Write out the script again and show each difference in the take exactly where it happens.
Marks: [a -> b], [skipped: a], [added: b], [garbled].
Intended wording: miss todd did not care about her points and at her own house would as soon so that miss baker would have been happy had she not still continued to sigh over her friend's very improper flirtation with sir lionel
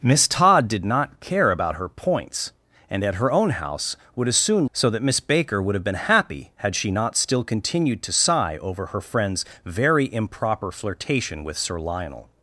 miss todd did not care about her points and at her own house would as soon so that miss baker would have been happy had she not still continued to sigh over her friend's very improper flirtation with sir lionel